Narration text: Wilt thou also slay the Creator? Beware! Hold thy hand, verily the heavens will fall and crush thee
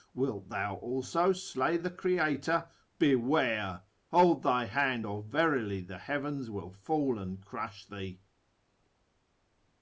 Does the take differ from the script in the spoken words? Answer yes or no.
yes